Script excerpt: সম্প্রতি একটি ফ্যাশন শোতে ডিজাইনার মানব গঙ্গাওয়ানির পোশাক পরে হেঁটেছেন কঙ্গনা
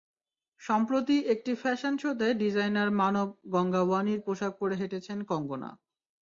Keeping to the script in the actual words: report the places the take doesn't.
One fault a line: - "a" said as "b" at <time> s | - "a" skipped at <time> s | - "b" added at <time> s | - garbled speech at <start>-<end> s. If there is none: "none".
none